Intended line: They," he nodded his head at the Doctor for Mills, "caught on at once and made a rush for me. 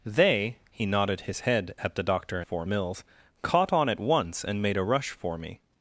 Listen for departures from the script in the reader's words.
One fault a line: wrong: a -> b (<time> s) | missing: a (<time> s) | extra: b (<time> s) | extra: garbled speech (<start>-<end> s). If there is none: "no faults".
no faults